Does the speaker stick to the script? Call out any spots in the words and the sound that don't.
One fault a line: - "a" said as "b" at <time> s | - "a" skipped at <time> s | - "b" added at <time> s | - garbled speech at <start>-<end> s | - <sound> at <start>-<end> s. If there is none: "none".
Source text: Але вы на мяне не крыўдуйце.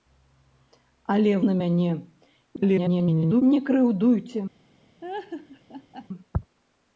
- "вы" skipped at 1.3 s
- garbled speech at 2.6-3.4 s
- laugh at 5.0-6.1 s